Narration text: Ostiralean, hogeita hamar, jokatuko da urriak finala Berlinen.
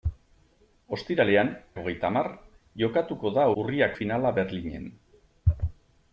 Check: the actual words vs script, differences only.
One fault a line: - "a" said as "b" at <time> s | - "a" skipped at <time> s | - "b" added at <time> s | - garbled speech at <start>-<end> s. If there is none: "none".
none